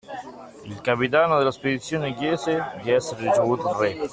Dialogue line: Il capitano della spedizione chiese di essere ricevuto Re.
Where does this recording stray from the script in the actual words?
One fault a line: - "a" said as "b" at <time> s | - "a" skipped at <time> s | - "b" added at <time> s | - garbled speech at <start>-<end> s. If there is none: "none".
none